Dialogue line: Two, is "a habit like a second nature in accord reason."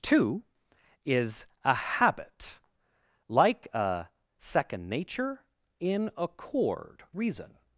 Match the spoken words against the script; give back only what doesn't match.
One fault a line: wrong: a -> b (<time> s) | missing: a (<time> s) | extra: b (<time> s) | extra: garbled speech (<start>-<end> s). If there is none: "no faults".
no faults